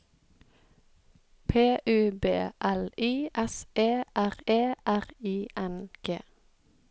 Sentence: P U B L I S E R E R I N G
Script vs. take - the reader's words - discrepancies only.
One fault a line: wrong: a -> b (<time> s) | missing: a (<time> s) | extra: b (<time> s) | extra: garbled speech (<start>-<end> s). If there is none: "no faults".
no faults